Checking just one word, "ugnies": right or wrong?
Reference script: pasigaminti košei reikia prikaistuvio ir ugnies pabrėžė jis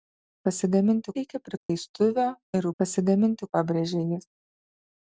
wrong